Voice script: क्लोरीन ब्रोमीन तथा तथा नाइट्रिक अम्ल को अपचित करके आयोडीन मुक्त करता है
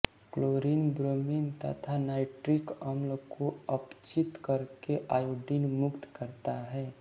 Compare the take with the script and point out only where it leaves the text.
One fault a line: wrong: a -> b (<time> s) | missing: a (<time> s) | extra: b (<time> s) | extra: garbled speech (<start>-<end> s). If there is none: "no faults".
missing: तथा (2.0 s)